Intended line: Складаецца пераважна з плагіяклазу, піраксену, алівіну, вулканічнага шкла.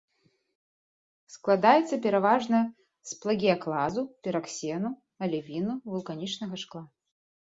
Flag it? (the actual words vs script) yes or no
no